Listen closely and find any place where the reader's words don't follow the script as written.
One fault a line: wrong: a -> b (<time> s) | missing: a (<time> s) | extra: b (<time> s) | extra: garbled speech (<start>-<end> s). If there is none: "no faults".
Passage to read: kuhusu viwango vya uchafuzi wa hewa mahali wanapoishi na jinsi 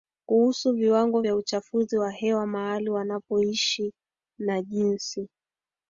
no faults